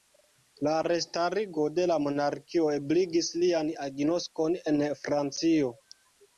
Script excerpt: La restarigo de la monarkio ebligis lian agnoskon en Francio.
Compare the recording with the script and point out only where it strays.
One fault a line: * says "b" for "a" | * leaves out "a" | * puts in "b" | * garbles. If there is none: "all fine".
all fine